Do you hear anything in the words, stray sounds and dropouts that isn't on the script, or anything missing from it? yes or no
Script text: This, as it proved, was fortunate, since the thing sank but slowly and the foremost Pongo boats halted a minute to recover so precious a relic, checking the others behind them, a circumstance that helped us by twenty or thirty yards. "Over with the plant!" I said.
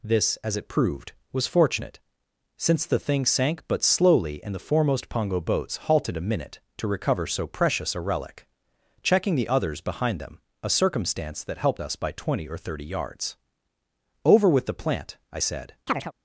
yes